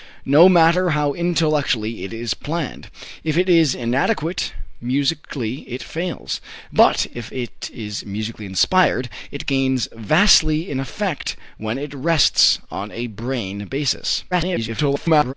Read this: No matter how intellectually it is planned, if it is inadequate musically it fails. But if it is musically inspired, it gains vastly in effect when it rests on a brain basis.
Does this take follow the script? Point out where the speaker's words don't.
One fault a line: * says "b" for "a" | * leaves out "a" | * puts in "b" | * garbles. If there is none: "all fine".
* garbles